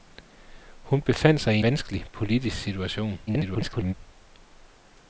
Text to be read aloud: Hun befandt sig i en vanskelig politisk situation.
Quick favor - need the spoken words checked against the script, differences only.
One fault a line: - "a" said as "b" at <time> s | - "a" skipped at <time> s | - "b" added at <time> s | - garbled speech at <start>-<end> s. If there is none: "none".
- "en" skipped at 1.6 s
- garbled speech at 3.3-3.9 s